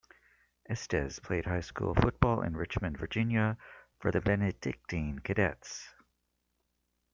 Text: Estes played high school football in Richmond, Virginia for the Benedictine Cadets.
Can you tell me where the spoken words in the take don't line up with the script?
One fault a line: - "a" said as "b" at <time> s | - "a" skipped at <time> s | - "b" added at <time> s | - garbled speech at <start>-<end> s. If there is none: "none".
none